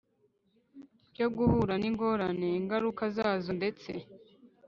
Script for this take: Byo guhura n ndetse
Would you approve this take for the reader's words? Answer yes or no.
no